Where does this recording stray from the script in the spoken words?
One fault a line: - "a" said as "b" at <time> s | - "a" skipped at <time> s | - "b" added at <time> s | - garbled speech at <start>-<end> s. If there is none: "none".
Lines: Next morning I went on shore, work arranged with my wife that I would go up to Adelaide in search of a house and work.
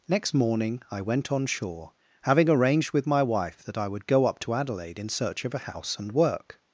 - "work" said as "having" at 2.2 s